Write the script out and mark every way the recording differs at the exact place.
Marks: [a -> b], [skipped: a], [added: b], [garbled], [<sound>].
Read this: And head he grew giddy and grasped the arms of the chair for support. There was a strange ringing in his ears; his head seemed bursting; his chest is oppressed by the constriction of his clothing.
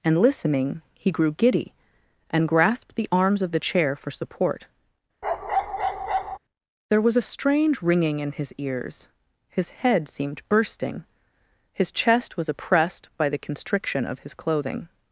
And [head -> listening] he grew giddy and grasped the arms of the chair for support. [bark] There was a strange ringing in his ears; his head seemed bursting; his chest [is -> was] oppressed by the constriction of his clothing.